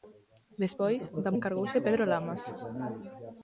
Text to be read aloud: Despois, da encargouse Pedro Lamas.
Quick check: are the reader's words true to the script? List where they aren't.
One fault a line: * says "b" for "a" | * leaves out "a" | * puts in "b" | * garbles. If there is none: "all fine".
all fine